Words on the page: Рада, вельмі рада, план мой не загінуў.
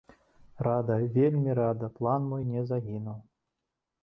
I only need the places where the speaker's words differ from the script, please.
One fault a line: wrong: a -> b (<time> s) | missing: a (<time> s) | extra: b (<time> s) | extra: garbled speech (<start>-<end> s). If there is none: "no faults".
no faults